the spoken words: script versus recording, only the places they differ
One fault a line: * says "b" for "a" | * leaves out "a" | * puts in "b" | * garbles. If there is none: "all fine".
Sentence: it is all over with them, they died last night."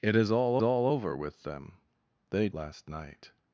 * puts in "all"
* leaves out "died"